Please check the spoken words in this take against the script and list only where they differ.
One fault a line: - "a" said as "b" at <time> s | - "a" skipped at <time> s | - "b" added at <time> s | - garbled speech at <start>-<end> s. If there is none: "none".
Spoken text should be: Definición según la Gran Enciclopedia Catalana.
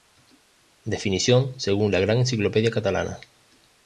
none